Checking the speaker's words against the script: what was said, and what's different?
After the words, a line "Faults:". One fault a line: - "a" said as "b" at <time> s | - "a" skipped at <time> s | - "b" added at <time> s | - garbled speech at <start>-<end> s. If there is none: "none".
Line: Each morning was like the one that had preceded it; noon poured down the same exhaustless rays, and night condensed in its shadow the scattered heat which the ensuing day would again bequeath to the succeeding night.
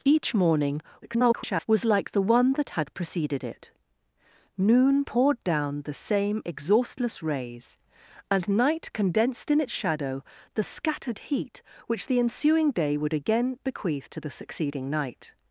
Each morning [garbled] was like the one that had preceded it; noon poured down the same exhaustless rays, and night condensed in its shadow the scattered heat which the ensuing day would again bequeath to the succeeding night.
Faults:
- garbled speech at 1.0-1.7 s